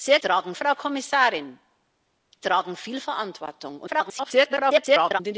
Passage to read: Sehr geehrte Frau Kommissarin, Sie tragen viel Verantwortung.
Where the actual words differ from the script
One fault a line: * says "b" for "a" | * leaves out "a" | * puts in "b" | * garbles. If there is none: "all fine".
* says "tragen" for "geehrte"
* leaves out "Sie"
* garbles